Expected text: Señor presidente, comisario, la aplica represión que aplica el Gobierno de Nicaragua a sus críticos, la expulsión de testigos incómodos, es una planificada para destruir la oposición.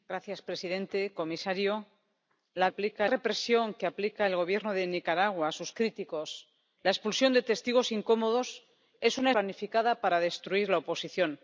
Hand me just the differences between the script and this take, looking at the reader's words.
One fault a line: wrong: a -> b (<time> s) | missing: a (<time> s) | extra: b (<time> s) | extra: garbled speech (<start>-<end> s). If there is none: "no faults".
no faults